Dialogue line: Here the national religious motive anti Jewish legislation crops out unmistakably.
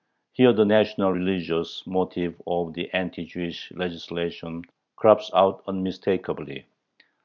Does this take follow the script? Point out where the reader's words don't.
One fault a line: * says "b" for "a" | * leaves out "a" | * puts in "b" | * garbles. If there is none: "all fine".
* puts in "of the"